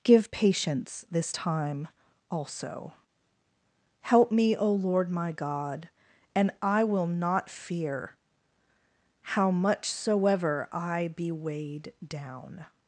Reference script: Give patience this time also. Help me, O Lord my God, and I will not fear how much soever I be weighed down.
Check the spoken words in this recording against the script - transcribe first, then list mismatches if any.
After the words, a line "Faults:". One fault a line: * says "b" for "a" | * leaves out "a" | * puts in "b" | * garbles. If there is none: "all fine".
Give patience this time also. Help me, O Lord my God, and I will not fear how much soever I be weighed down.
Faults:
all fine